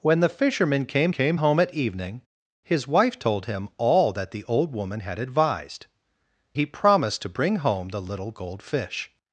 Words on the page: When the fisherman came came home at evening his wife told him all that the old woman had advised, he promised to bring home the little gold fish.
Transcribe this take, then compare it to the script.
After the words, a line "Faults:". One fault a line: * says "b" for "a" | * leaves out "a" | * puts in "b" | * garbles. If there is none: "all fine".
When the fisherman came came home at evening his wife told him all that the old woman had advised, he promised to bring home the little gold fish.
Faults:
all fine